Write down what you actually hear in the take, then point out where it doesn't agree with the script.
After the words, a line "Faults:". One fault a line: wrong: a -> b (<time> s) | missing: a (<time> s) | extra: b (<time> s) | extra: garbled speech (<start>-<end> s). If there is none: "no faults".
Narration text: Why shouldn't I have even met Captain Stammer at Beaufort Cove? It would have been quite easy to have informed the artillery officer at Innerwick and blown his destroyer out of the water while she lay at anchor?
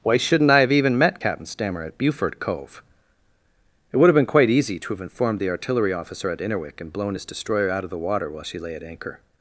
Why shouldn't I have even met Captain Stammer at Beaufort Cove? It would have been quite easy to have informed the artillery officer at Innerwick and blown his destroyer out of the water while she lay at anchor?
Faults:
no faults